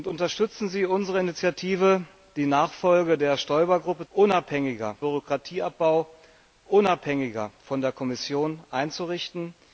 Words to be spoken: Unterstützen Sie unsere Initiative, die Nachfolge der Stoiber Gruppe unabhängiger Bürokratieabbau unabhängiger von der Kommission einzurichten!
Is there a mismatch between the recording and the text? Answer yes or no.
no